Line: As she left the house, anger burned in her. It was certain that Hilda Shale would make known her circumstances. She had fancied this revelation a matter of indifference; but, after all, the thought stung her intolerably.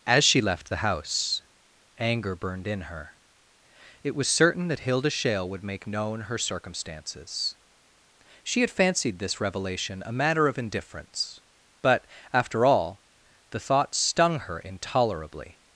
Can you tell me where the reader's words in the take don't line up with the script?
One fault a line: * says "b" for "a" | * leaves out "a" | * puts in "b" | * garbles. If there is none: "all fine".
all fine